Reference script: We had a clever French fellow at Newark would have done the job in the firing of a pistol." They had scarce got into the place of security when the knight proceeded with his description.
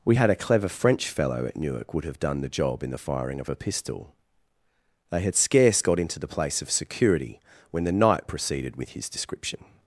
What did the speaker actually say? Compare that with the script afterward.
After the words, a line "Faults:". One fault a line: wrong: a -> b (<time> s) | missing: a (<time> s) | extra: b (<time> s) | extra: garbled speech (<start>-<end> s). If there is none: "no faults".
We had a clever French fellow at Newark would have done the job in the firing of a pistol." They had scarce got into the place of security when the knight proceeded with his description.
Faults:
no faults